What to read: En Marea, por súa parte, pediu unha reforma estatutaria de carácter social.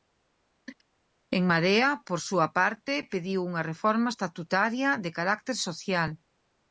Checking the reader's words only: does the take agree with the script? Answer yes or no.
yes